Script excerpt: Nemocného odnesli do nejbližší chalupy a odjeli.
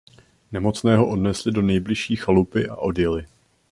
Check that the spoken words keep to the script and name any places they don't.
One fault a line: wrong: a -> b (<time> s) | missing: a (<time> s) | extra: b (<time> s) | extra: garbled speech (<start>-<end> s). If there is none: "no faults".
no faults